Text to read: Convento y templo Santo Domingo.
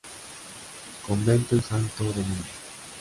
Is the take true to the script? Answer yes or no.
no